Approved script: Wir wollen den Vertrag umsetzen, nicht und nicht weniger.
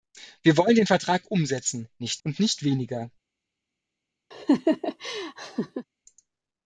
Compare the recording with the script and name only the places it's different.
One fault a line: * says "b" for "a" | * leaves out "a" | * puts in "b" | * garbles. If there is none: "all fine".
all fine